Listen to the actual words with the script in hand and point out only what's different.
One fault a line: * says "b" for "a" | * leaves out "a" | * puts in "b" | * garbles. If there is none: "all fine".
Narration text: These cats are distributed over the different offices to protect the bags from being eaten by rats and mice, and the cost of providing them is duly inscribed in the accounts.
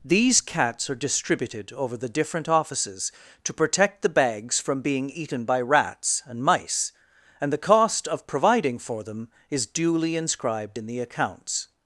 * puts in "for"